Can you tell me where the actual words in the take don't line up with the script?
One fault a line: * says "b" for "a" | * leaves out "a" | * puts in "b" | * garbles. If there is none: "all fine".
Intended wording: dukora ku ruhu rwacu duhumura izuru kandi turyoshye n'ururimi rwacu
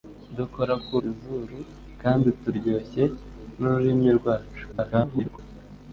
* leaves out "ruhu rwacu duhumura"
* garbles